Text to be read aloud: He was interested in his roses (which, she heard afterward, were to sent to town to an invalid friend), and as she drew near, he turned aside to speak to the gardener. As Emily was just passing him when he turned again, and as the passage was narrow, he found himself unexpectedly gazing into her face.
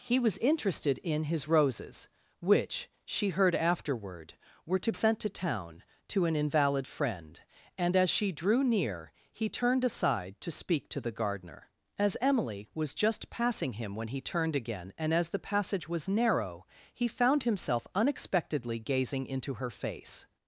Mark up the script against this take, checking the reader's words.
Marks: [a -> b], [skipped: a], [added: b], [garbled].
He was interested in his roses (which, she heard afterward, were to sent to town to an invalid friend), and as she drew near, he turned aside to speak to the gardener. As Emily was just passing him when he turned again, and as the passage was narrow, he found himself unexpectedly gazing into her face.